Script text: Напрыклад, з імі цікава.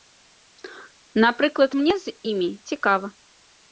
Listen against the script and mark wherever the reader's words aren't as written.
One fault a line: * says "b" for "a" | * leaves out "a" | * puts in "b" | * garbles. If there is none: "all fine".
* puts in "мне"